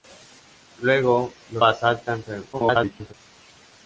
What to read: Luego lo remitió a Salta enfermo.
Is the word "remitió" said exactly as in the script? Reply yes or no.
no